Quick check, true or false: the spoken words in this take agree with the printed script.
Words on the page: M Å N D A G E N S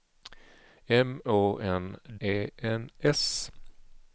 false